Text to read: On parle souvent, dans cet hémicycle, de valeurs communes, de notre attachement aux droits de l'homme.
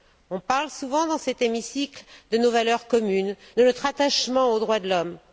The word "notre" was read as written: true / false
true